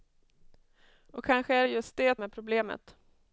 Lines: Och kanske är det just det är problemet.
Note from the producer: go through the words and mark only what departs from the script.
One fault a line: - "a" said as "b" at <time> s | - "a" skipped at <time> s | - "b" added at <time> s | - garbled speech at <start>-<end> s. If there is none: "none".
none